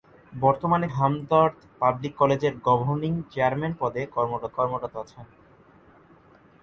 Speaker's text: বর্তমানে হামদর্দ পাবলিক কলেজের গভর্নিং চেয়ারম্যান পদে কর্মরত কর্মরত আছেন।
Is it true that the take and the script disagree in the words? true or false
false